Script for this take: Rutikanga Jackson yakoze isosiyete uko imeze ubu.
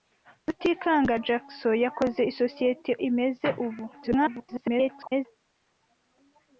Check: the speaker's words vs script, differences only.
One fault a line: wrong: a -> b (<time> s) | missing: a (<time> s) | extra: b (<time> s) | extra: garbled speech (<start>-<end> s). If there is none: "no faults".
missing: uko (2.9 s)
extra: garbled speech (3.9-5.3 s)